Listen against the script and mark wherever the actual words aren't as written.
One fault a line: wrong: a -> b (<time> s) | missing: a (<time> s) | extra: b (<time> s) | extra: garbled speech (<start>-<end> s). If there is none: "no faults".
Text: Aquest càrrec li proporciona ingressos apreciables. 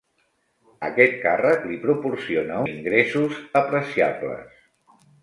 no faults